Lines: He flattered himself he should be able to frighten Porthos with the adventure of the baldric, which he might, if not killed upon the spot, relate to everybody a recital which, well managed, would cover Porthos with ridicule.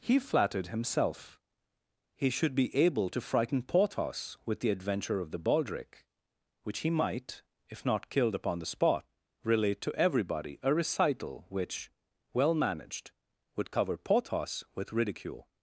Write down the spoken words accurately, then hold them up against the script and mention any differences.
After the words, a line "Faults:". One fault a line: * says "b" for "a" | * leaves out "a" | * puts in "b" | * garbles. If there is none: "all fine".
He flattered himself he should be able to frighten Porthos with the adventure of the baldric, which he might, if not killed upon the spot, relate to everybody a recital which, well managed, would cover Porthos with ridicule.
Faults:
all fine